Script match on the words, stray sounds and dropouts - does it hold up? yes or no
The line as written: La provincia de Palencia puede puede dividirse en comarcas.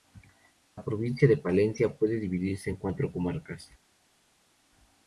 no